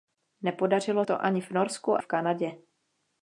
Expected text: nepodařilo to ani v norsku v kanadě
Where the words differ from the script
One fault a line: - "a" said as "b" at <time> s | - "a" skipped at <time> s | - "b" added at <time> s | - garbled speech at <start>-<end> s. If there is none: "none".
none